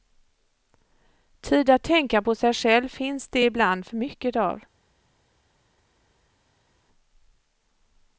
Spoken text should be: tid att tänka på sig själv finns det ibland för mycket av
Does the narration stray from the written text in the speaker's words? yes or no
no